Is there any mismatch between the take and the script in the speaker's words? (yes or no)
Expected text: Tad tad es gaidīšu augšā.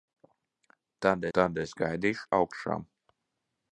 no